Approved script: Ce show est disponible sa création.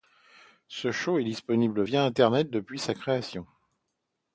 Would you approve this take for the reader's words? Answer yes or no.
no